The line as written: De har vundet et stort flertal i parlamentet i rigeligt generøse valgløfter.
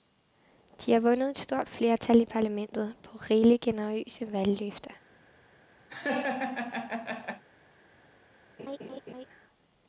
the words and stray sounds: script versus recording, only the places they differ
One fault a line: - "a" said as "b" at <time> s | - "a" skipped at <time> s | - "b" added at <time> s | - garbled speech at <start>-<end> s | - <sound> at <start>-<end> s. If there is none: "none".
- "i" said as "på" at 3.0 s
- laugh at 5.9-7.4 s
- laugh at 8.6-9.3 s